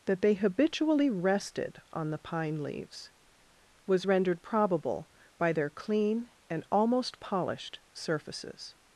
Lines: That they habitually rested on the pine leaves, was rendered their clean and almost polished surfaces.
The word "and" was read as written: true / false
true